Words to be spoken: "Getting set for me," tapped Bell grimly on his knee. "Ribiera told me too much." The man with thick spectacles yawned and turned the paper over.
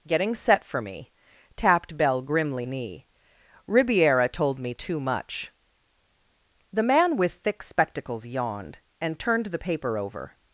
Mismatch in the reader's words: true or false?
true